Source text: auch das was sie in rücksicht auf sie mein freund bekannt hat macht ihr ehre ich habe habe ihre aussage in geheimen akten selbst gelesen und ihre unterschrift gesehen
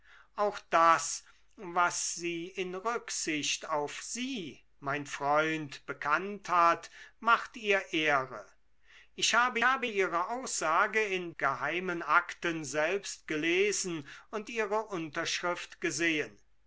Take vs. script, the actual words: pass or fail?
pass